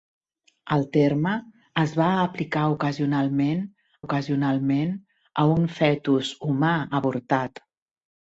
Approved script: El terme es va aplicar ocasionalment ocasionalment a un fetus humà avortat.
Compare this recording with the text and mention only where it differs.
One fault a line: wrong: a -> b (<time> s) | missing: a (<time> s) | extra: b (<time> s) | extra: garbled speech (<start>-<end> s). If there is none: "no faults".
no faults